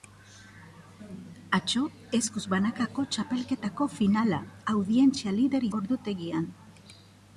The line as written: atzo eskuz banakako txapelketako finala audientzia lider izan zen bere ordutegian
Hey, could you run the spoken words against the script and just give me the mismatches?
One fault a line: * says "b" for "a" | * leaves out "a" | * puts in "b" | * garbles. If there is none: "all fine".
* leaves out "izan zen bere"